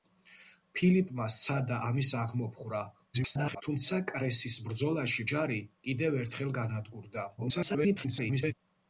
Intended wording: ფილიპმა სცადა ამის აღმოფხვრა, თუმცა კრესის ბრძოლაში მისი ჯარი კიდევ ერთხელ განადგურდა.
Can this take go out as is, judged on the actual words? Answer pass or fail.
fail